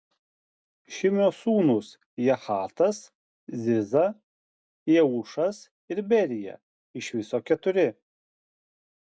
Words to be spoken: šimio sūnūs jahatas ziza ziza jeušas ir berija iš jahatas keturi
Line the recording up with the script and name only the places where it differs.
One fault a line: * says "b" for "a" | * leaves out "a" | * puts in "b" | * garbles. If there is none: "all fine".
* leaves out "ziza"
* says "viso" for "jahatas"